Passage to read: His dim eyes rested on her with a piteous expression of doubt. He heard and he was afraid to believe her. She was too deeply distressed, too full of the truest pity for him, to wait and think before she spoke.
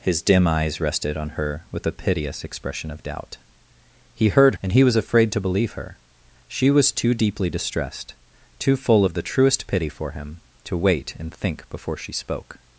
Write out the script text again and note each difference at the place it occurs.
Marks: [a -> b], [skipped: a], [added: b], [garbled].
His dim eyes rested on her with a piteous expression of doubt. He heard and he was afraid to believe her. She was too deeply distressed, too full of the truest pity for him, to wait and think before she spoke.